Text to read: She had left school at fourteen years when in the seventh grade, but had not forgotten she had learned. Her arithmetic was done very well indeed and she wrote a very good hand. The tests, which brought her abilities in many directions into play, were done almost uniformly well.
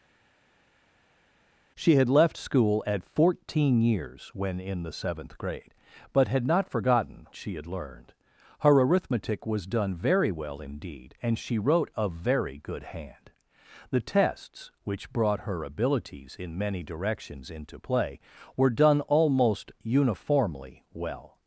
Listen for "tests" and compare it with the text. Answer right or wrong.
right